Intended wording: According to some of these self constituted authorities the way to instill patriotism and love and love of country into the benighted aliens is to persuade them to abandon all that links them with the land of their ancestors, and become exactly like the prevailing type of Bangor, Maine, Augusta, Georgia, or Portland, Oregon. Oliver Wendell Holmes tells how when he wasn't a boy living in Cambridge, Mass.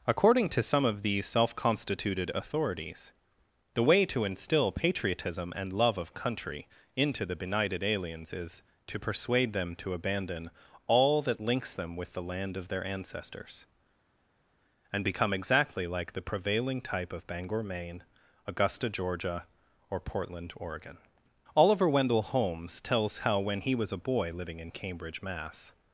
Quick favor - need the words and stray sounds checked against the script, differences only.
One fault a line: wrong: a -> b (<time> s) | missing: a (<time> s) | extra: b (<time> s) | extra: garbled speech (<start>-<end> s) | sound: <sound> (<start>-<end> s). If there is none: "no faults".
missing: and love (6.0 s)
wrong: wasn't -> was (23.7 s)